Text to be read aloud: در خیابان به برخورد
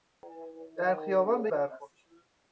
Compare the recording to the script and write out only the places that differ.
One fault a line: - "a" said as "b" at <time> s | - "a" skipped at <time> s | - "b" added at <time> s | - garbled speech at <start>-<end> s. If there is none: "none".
none